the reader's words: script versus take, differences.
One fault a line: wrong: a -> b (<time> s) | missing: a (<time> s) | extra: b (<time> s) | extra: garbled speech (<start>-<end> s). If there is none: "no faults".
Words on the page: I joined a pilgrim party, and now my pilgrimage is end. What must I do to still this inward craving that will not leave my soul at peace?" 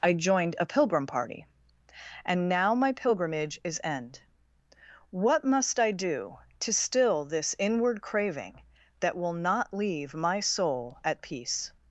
no faults